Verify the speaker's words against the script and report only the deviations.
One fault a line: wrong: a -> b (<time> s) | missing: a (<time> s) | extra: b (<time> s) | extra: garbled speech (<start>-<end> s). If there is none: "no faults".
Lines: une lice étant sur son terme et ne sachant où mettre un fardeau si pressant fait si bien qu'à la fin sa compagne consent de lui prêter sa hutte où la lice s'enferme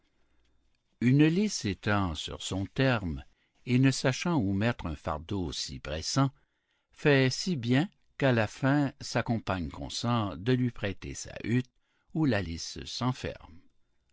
no faults